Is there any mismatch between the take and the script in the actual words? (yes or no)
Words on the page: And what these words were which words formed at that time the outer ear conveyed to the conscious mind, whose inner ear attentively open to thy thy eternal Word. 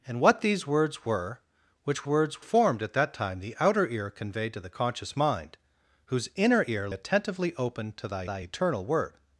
no